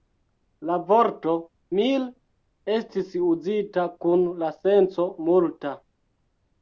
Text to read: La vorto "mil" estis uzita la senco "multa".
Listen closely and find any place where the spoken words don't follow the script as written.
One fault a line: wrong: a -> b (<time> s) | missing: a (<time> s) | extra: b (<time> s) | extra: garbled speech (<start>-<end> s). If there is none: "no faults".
extra: kun (4.1 s)